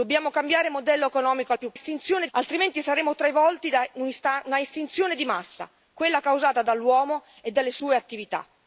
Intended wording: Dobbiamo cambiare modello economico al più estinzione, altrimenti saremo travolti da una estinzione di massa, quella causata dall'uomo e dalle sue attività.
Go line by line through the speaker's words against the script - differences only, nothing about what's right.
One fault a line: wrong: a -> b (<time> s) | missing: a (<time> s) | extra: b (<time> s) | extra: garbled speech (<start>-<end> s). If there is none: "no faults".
no faults